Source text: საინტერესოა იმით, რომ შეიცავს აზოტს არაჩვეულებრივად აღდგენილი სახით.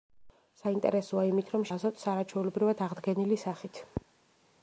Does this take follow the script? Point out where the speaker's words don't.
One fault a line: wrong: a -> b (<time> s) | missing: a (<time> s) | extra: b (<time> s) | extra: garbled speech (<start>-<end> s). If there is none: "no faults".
missing: შეიცავს (1.6 s)